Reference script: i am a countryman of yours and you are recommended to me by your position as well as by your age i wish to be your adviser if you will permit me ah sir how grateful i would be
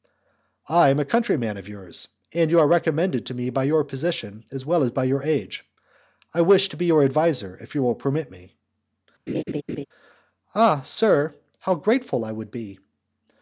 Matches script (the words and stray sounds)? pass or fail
fail